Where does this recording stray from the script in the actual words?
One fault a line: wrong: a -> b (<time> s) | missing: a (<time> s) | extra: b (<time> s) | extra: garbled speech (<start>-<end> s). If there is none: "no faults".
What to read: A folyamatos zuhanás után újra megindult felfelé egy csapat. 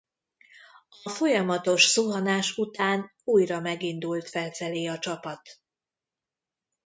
wrong: egy -> a (4.9 s)